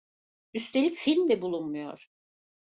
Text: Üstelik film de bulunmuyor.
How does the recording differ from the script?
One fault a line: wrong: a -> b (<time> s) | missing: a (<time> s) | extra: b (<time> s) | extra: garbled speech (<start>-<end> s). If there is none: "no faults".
no faults